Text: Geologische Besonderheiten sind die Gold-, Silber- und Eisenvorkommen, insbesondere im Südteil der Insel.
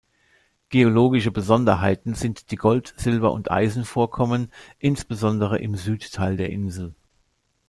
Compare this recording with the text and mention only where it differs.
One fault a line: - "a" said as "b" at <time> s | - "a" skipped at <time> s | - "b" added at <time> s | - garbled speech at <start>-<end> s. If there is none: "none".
none